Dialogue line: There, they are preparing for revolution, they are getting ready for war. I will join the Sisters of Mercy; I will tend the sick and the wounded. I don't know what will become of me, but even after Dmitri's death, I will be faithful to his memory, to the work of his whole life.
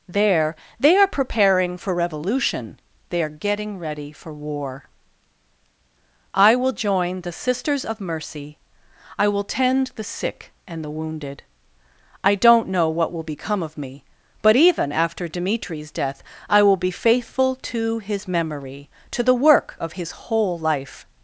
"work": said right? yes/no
yes